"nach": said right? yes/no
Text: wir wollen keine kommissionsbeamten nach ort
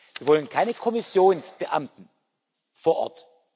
no